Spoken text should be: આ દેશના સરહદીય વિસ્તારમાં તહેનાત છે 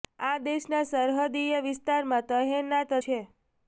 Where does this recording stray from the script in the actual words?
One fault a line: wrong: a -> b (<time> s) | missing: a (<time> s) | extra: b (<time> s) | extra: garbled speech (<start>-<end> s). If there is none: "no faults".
no faults